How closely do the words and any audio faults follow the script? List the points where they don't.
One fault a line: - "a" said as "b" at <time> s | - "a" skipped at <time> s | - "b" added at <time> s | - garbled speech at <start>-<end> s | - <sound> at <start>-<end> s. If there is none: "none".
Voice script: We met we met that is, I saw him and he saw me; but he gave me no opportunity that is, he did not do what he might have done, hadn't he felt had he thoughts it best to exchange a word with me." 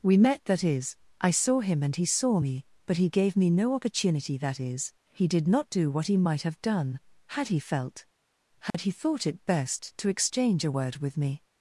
- "we met" skipped at 0.5 s
- "hadn't" said as "had" at 7.3 s
- dropout at 8.7-8.7 s
- "thoughts" said as "thought" at 8.9 s